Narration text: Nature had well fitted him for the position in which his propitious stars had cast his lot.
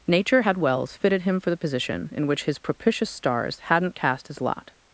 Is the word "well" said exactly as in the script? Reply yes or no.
no